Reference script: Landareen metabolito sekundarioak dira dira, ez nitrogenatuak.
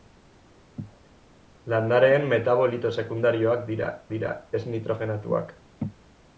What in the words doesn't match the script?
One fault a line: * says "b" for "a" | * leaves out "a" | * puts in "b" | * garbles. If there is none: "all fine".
all fine